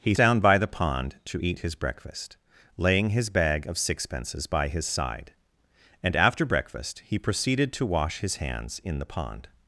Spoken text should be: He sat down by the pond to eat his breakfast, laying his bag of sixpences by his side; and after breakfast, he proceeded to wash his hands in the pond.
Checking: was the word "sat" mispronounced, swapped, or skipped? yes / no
yes